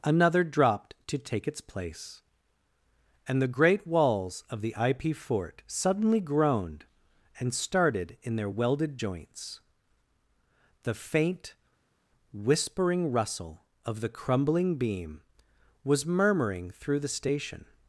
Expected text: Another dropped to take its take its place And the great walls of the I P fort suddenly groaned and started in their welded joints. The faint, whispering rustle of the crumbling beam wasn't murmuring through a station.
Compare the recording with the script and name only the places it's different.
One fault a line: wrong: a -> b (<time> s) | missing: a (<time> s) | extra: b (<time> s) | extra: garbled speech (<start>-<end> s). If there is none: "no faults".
missing: take its (1.6 s)
wrong: wasn't -> was (15.8 s)
wrong: a -> the (17.0 s)